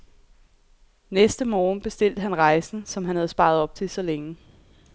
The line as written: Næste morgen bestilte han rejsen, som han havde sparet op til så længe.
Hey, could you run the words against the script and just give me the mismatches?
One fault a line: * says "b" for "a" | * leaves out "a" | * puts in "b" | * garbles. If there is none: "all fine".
all fine